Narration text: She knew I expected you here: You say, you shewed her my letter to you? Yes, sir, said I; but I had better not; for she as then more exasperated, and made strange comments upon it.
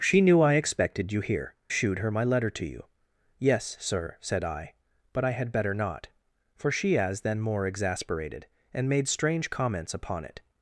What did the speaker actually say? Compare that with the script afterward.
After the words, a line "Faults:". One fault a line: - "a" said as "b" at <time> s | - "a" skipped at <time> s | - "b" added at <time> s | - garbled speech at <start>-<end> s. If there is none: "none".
She knew I expected you here: Shewed her my letter to you? Yes, sir, said I; but I had better not; for she as then more exasperated, and made strange comments upon it.
Faults:
- "You say you" skipped at 1.5 s